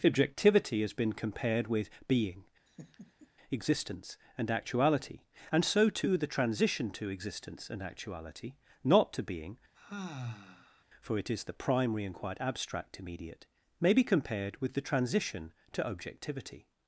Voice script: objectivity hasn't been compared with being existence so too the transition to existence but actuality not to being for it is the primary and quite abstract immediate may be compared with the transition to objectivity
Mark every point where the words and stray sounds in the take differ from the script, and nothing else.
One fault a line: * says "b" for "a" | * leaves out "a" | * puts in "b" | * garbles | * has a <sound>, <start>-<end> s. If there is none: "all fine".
* says "has" for "hasn't"
* has a laugh, 2.7-3.3 s
* puts in "and actuality and"
* says "and" for "but"
* has a sigh, 9.7-10.8 s